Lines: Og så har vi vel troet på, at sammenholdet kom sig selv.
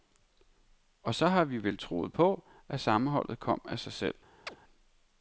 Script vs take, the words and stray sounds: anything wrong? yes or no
yes